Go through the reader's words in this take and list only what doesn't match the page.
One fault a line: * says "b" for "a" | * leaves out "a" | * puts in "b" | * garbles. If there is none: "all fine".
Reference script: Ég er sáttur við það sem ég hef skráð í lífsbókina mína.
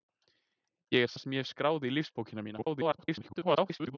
* leaves out "sáttur við"
* garbles